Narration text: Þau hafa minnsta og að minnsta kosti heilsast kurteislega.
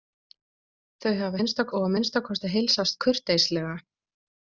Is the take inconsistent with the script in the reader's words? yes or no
no